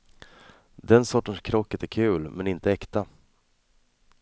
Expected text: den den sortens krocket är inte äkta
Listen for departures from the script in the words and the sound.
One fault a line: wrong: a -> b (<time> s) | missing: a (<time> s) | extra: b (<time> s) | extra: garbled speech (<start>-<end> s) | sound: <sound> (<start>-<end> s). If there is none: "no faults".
missing: den (1.1 s)
extra: kul men (1.8 s)